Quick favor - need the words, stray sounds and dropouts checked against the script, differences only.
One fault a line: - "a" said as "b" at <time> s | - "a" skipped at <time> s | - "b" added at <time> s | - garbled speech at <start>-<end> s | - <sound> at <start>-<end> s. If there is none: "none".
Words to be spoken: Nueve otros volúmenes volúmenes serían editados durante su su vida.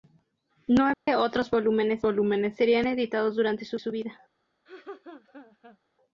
- dropout at 0.9-1.1 s
- laugh at 4.7-5.8 s